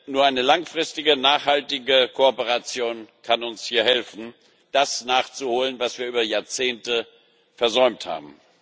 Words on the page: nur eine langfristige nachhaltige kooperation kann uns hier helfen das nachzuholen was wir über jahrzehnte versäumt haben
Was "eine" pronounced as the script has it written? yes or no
yes